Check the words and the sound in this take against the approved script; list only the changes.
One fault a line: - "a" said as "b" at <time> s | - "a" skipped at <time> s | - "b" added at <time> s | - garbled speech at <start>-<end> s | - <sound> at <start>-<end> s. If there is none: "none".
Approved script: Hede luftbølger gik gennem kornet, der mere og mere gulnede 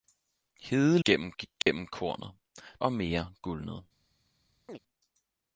- "luftbølger" said as "gennem" at 1.0 s
- dropout at 1.6-1.7 s
- "der mere" skipped at 2.3 s
- chirp at 4.7-4.8 s